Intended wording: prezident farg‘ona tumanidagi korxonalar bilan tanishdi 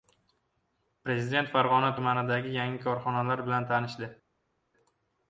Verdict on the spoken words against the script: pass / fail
fail